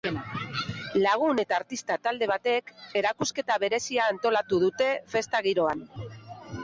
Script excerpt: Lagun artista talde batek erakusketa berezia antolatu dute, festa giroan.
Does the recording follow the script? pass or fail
fail